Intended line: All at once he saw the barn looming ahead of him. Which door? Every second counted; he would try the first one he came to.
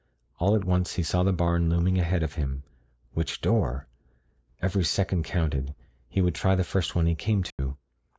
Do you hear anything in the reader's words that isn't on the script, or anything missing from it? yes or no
no